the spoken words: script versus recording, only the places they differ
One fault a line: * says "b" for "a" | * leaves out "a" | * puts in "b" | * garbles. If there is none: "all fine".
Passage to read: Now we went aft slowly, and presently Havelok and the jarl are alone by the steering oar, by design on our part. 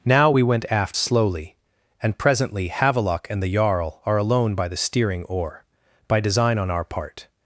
all fine